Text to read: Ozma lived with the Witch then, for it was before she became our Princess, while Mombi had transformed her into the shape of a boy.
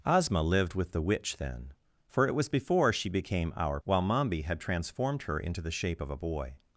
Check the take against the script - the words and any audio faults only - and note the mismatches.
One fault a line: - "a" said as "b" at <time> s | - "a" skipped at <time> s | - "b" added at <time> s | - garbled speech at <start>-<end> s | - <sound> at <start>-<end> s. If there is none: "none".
- "Princess" skipped at 3.8 s